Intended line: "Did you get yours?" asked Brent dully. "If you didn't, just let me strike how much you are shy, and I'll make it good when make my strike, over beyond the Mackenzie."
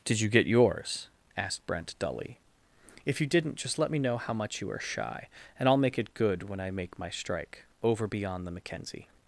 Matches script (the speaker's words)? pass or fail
fail